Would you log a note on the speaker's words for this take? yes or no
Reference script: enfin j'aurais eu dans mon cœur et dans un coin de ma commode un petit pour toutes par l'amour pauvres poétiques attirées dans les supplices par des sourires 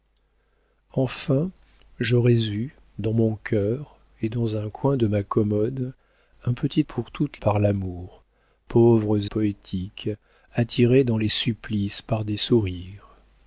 no